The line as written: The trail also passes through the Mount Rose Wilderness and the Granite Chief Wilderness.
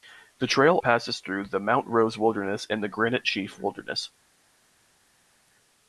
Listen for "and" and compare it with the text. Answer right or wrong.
right